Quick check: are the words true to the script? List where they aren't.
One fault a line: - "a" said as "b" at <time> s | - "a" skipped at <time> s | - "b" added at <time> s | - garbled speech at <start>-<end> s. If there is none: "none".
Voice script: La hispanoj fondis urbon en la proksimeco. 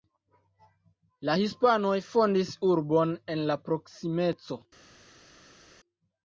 none